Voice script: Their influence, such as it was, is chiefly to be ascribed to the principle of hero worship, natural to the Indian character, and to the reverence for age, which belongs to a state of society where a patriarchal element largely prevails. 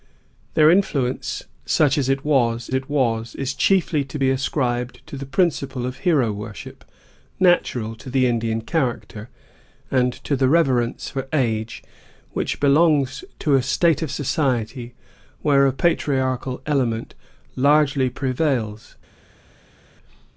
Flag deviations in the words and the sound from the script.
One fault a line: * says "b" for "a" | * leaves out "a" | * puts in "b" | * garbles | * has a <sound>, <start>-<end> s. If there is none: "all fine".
* puts in "it was"